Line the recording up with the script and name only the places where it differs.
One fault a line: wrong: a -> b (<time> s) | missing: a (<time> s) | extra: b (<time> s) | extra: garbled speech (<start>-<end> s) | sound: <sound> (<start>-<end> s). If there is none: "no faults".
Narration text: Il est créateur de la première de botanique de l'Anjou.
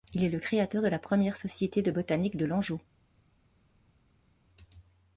extra: le (0.3 s)
extra: société (1.4 s)